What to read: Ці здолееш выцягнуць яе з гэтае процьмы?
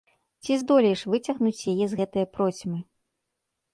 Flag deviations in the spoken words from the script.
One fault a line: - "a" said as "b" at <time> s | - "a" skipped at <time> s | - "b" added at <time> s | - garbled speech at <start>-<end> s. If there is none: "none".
none